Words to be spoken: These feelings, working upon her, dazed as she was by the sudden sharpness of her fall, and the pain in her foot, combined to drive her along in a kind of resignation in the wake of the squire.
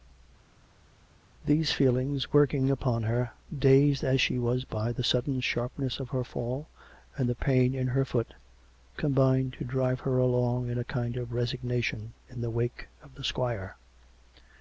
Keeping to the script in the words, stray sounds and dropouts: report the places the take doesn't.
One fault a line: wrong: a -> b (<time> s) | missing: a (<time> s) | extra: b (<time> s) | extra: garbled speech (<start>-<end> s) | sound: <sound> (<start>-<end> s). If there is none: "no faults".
no faults